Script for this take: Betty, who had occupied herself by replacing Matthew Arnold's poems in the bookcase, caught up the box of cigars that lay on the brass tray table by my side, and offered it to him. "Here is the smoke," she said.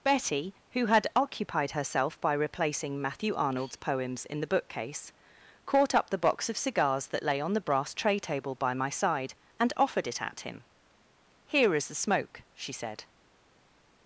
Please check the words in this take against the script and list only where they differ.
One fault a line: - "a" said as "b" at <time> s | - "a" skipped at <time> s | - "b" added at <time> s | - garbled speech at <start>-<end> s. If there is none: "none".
- "to" said as "at" at 10.2 s